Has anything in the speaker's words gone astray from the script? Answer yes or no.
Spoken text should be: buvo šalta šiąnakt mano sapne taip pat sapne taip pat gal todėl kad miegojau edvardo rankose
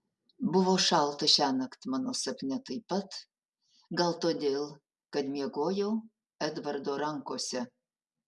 yes